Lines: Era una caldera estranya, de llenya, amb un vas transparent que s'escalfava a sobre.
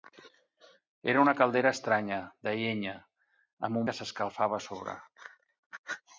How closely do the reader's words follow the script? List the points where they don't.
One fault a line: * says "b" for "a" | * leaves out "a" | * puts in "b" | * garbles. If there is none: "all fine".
* leaves out "un vas transparent"